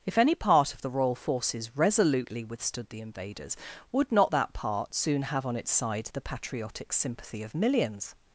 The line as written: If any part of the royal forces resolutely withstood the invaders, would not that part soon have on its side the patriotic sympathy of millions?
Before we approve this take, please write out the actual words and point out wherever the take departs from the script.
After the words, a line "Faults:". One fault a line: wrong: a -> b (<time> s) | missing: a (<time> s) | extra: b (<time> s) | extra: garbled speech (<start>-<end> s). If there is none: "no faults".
If any part of the royal forces resolutely withstood the invaders, would not that part soon have on its side the patriotic sympathy of millions?
Faults:
no faults